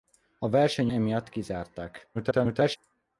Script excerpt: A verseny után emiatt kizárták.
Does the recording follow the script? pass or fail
fail